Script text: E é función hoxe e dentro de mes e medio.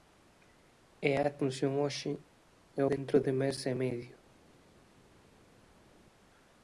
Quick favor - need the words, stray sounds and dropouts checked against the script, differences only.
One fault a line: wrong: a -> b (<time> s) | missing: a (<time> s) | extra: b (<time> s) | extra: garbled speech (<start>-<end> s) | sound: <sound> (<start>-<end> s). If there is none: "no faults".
no faults